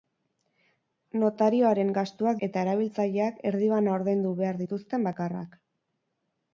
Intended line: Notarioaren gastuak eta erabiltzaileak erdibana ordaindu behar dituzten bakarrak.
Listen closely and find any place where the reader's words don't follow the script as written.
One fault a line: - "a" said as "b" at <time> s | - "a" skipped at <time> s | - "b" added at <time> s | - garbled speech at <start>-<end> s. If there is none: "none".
none